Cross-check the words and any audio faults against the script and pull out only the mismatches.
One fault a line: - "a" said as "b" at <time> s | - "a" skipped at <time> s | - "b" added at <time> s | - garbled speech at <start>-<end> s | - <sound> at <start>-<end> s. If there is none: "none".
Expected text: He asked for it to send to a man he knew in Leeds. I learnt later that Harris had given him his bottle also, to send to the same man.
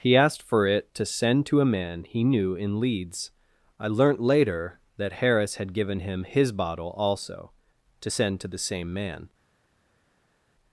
none